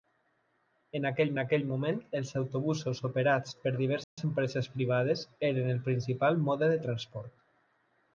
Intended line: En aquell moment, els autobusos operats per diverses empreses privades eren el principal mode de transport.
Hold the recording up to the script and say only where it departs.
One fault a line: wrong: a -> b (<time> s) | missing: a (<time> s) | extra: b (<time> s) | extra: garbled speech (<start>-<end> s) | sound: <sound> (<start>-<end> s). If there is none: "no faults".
extra: aquell (1.4 s)
sound: dropout (4.0-4.2 s)